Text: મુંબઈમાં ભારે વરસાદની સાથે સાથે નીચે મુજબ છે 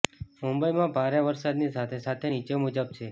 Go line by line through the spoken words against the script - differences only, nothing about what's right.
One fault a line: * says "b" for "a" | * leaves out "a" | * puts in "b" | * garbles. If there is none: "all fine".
all fine